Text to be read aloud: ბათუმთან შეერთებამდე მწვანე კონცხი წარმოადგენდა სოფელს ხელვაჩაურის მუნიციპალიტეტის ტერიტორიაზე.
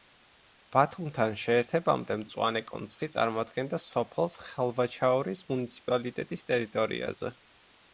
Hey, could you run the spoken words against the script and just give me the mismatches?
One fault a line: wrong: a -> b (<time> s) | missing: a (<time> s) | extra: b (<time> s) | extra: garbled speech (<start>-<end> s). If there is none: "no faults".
no faults